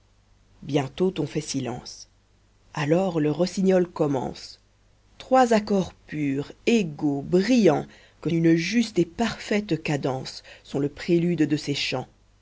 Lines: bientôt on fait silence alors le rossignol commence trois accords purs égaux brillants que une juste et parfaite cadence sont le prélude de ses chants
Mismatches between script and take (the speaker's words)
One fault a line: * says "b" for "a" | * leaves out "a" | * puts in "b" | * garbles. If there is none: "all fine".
all fine